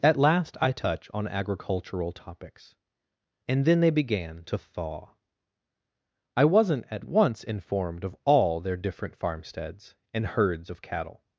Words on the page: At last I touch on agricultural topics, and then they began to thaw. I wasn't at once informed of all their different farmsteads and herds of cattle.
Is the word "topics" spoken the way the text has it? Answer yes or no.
yes